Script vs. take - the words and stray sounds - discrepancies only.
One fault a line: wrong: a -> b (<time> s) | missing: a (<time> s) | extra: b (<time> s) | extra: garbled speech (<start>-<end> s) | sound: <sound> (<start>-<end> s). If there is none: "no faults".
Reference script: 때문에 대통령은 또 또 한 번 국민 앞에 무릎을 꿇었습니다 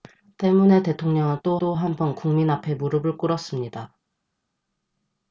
no faults